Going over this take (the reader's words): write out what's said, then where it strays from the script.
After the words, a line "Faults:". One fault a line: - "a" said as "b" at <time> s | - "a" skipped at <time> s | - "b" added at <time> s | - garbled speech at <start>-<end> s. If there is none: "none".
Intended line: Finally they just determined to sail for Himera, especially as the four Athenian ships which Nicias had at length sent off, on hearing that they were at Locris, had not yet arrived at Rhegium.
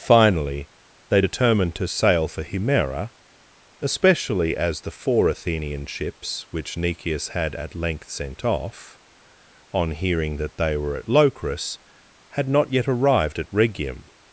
Finally they determined to sail for Himera, especially as the four Athenian ships which Nicias had at length sent off, on hearing that they were at Locris, had not yet arrived at Rhegium.
Faults:
- "just" skipped at 1.2 s